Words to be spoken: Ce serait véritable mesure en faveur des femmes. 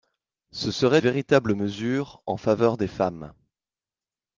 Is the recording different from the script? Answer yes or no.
no